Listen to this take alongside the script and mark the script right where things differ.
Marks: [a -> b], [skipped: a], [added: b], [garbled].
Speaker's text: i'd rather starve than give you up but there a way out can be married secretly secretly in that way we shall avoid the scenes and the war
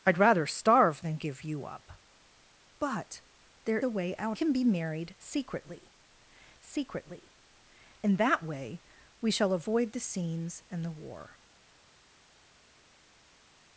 i'd rather starve than give you up but there a way out can be married secretly secretly in that way we shall avoid the scenes and the war